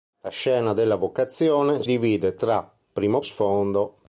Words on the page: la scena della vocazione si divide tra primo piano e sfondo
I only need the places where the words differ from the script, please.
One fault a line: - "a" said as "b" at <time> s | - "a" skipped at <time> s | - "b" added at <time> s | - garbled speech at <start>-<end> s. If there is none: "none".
- "si" skipped at 1.8 s
- "piano" skipped at 3.2 s